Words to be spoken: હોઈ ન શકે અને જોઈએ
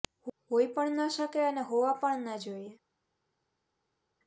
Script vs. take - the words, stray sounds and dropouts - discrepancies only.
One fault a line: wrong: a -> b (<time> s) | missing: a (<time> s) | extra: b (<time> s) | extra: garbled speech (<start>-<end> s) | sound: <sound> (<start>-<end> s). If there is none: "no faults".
extra: પણ (0.7 s)
extra: હોવા પણ ન (1.7 s)